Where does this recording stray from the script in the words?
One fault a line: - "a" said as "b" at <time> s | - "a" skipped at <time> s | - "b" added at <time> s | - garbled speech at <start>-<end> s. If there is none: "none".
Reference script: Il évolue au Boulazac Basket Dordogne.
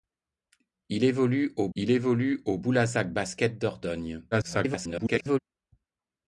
- "il évolue au" added at 1.8 s
- garbled speech at 4.3-5.4 s